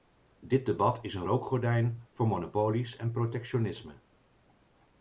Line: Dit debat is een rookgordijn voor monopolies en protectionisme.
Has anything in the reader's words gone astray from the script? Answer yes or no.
no